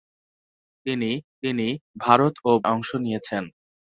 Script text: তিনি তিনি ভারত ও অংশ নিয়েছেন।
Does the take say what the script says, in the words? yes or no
yes